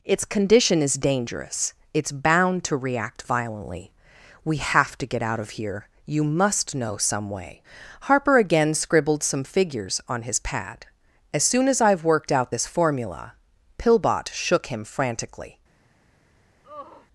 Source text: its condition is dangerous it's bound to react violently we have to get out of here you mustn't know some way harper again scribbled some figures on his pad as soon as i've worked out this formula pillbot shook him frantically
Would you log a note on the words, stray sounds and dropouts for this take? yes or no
yes